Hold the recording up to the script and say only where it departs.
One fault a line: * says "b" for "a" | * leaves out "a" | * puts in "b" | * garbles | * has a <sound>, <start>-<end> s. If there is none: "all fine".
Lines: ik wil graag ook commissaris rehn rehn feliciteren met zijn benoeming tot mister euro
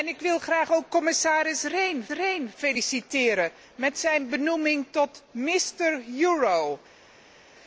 all fine